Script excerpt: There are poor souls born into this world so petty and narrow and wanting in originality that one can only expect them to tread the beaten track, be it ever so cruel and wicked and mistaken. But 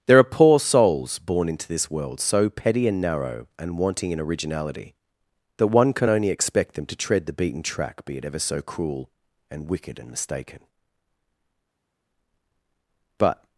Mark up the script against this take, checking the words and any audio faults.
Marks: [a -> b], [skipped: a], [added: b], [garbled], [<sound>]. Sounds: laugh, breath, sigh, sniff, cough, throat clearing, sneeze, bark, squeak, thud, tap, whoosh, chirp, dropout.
There are poor souls born into this world so petty and narrow and wanting in originality that one can only expect them to tread the beaten track, be it ever so cruel and wicked and mistaken. But